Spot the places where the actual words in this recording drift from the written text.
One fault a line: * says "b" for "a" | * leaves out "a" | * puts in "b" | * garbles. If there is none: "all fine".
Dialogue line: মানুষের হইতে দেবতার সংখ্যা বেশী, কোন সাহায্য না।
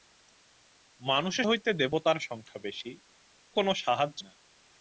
all fine